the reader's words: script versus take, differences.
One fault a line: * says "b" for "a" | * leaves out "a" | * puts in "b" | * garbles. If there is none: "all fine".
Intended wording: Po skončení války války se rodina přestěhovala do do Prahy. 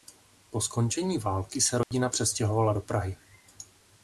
* leaves out "války"
* leaves out "do"